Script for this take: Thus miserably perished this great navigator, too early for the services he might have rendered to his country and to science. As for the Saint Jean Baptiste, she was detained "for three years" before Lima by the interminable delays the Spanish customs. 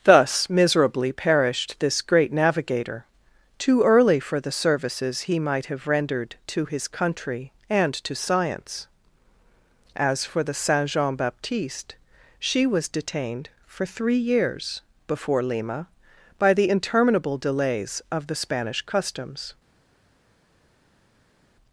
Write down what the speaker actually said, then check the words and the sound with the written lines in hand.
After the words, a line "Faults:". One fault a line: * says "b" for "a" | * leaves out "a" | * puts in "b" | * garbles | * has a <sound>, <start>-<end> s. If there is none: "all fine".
Thus miserably perished this great navigator, too early for the services he might have rendered to his country and to science. As for the Saint Jean Baptiste, she was detained "for three years" before Lima by the interminable delays of the Spanish customs.
Faults:
* puts in "of"